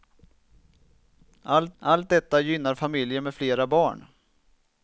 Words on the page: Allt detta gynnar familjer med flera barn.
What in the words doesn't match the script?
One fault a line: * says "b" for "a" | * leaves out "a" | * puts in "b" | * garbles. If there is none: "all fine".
* puts in "allt"